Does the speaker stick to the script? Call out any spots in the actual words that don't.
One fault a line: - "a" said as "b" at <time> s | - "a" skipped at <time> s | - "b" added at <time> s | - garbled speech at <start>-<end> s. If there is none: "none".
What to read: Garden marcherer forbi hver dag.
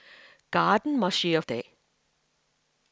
- "forbi hver" skipped at 1.4 s